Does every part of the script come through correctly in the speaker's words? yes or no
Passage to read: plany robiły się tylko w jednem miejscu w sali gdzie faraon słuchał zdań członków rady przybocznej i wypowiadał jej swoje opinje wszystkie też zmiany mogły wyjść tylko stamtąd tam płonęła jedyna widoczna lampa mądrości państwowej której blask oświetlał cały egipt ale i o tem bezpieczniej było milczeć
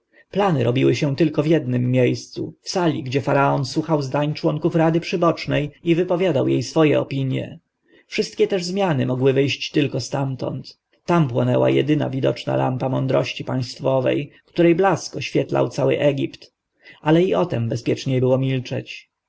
yes